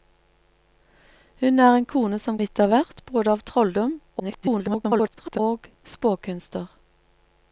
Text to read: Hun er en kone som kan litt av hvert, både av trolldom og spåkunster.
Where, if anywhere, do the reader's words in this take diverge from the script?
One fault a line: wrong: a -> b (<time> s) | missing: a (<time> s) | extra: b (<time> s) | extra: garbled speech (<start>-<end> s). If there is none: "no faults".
missing: kan (2.4 s)
extra: garbled speech (4.2-5.4 s)